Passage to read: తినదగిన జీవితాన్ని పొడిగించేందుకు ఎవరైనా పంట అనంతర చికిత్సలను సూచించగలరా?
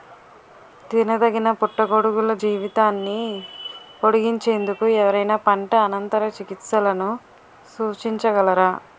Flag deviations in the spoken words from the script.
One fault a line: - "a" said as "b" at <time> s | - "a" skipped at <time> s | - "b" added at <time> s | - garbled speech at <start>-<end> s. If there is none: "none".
- "పుట్టగొడుగుల" added at 1.6 s